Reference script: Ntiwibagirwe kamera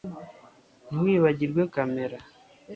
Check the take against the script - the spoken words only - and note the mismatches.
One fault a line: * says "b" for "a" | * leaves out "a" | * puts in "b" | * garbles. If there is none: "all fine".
all fine